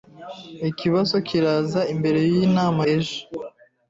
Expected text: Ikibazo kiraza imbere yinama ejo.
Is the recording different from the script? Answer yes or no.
no